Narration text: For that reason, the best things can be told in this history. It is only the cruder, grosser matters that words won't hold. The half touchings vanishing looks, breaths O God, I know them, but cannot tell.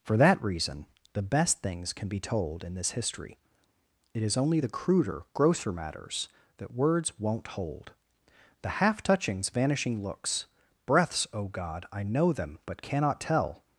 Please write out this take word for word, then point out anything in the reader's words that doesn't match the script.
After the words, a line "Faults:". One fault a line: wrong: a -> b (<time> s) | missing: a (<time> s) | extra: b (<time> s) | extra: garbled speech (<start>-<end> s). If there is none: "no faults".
For that reason, the best things can be told in this history. It is only the cruder, grosser matters that words won't hold. The half touchings vanishing looks, breaths O God, I know them, but cannot tell.
Faults:
no faults